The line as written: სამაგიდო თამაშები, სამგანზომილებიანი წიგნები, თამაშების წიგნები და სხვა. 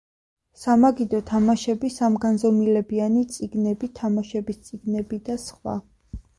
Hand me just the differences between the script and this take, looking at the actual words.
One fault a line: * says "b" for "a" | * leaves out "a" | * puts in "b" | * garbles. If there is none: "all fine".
all fine